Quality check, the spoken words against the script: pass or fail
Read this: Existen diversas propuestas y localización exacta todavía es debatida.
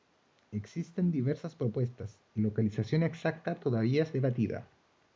pass